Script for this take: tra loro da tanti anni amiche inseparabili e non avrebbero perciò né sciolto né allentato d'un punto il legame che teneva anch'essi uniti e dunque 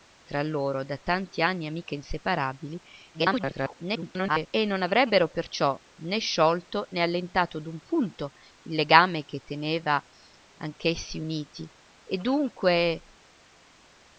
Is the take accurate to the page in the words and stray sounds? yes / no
no